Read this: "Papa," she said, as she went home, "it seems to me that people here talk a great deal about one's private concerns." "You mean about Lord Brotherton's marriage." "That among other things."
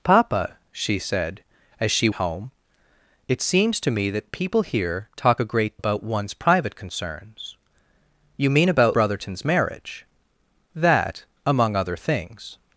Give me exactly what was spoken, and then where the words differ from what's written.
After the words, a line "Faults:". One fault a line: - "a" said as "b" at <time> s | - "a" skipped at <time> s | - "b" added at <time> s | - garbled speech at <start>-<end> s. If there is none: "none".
"Papa," she said, as she home, "it seems to me that people here talk a great about one's private concerns." "You mean about Brotherton's marriage." "That among other things."
Faults:
- "went" skipped at 2.1 s
- "deal" skipped at 5.8 s
- "Lord" skipped at 9.0 s